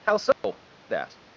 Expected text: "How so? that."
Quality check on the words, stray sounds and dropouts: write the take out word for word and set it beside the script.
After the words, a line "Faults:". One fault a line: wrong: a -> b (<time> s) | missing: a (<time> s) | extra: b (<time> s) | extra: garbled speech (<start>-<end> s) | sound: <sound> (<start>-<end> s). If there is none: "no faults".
"How so? that."
Faults:
sound: dropout (0.3-0.4 s)